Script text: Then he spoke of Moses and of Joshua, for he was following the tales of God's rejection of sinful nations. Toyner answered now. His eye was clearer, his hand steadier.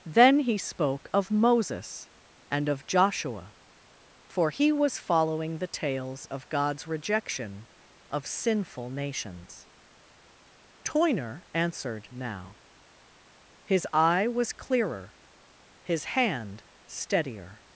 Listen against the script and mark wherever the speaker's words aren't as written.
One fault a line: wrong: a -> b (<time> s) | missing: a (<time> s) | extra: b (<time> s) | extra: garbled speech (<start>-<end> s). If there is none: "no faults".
no faults